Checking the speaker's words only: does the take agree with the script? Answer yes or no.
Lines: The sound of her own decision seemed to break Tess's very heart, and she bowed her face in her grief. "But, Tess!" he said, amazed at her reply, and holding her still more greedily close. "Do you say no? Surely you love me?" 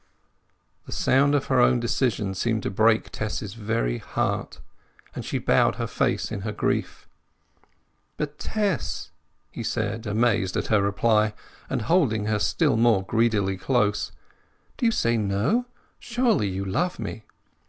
yes